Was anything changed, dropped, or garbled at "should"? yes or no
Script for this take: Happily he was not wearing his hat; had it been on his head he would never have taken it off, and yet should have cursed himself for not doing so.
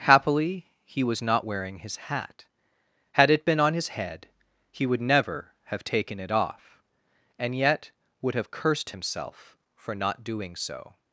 yes